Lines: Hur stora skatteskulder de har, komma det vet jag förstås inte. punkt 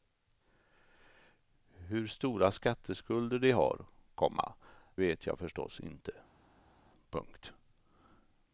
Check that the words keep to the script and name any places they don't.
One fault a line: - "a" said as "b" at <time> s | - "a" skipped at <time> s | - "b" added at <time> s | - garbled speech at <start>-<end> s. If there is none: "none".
- "det" skipped at 4.5 s